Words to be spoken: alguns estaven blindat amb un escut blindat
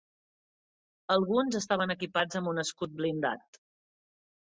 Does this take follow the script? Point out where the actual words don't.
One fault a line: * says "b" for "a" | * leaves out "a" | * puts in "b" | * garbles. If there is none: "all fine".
* says "equipats" for "blindat"